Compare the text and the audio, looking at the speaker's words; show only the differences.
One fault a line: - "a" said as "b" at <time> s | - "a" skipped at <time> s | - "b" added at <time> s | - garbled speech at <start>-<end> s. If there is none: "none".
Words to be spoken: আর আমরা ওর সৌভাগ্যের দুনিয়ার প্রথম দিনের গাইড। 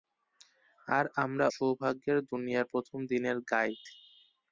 - "ওর" skipped at 1.4 s